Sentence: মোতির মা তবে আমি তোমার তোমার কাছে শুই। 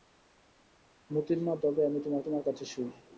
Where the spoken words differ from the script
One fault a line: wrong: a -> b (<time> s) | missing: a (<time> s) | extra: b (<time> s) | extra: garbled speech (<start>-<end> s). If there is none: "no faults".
no faults